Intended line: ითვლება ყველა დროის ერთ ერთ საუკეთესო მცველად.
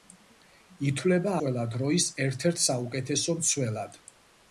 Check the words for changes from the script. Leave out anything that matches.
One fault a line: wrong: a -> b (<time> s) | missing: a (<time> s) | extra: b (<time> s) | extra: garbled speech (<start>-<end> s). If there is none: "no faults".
no faults